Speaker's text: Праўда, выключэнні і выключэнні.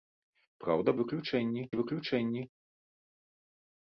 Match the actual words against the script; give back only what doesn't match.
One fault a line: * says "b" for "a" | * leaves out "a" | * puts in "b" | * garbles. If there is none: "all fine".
all fine